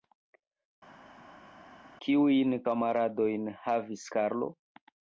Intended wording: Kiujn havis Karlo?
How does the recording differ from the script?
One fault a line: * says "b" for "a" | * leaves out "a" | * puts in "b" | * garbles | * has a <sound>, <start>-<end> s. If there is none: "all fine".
* puts in "kamaradojn"